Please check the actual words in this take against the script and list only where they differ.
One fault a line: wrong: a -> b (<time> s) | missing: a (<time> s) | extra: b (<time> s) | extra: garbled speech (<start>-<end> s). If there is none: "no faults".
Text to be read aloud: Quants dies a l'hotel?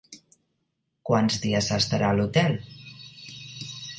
extra: s'estarà (1.7 s)